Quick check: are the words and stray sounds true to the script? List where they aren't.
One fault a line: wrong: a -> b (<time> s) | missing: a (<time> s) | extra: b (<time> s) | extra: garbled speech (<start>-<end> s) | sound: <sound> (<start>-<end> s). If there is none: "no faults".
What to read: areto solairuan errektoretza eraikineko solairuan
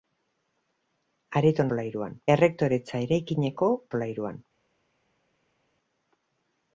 no faults